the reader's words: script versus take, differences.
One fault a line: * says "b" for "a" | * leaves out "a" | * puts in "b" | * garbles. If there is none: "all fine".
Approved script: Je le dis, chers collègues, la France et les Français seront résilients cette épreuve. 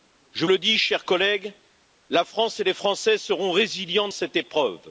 all fine